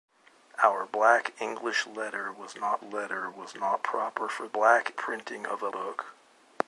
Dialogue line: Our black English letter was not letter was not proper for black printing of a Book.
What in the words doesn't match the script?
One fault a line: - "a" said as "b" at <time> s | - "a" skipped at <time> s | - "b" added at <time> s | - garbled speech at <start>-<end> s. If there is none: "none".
none